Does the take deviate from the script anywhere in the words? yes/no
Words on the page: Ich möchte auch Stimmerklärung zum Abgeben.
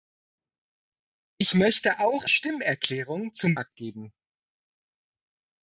no